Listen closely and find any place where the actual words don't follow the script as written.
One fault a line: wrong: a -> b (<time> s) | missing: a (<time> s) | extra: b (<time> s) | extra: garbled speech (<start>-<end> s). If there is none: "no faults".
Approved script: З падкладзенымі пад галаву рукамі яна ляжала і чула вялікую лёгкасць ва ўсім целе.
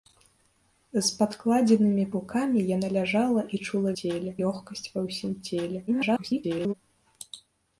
missing: пад галаву (2.0 s)
wrong: вялікую -> целе (4.0 s)
extra: garbled speech (5.9-6.7 s)